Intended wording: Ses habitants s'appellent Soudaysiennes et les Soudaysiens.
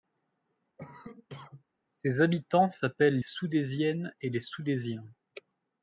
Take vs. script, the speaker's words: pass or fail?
pass